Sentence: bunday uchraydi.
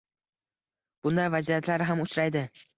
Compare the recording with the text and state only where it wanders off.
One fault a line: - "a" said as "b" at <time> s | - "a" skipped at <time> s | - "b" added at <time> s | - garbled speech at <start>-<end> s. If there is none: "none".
- "vaziyatlar ham" added at 1.4 s